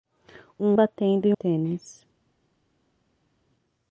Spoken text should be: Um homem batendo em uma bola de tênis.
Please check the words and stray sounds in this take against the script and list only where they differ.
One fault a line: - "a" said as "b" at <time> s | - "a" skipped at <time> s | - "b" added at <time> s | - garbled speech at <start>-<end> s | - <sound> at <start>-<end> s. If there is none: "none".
- "homem" skipped at 0.8 s
- "uma bola de" skipped at 1.3 s